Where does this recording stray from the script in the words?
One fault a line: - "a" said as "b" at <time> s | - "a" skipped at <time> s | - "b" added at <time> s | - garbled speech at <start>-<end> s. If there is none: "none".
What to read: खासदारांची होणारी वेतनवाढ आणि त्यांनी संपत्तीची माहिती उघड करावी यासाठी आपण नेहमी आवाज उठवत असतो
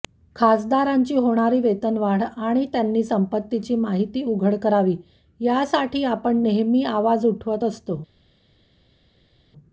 none